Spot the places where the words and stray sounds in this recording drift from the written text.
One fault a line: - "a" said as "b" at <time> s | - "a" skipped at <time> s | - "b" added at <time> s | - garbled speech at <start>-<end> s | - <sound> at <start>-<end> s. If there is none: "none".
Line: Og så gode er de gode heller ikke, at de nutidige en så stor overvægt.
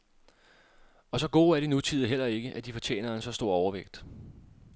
- "gode" said as "nutidige" at 1.7 s
- "nutidige" said as "fortjener" at 2.7 s